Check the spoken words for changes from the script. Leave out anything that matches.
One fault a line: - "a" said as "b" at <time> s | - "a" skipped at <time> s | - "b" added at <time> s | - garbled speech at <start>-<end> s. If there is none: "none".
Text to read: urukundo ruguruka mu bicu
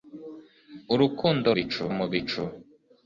- "ruguruka" said as "bicu" at 1.5 s